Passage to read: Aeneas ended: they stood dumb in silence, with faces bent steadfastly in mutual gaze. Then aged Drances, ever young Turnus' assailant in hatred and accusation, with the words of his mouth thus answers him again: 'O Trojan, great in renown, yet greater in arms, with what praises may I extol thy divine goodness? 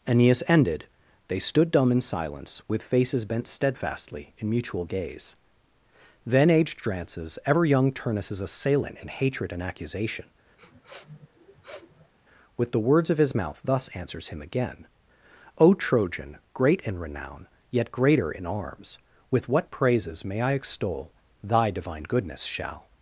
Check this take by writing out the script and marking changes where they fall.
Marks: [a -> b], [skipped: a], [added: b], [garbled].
Aeneas ended: they stood dumb in silence, with faces bent steadfastly in mutual gaze. Then aged Drances, ever young Turnus' assailant in hatred and accusation, with the words of his mouth thus answers him again: 'O Trojan, great in renown, yet greater in arms, with what praises may I extol thy divine goodness? [added: Shall]